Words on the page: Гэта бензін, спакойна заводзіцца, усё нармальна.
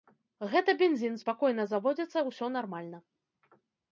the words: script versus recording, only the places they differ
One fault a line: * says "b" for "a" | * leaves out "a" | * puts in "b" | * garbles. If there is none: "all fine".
all fine